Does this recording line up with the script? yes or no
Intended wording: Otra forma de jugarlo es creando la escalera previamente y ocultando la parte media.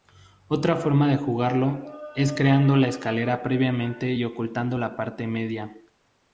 yes